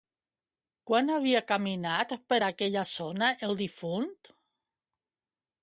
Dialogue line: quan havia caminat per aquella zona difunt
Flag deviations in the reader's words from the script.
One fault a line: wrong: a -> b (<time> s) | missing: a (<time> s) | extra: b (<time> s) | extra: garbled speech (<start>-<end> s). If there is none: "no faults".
extra: el (3.5 s)